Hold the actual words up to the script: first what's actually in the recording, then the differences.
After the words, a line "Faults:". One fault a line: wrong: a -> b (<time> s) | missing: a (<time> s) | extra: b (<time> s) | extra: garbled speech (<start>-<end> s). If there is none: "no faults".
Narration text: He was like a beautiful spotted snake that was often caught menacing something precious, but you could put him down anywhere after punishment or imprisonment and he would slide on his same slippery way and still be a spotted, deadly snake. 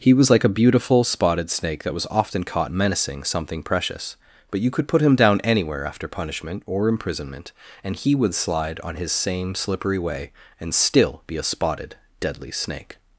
He was like a beautiful spotted snake that was often caught menacing something precious, but you could put him down anywhere after punishment or imprisonment and he would slide on his same slippery way and still be a spotted, deadly snake.
Faults:
no faults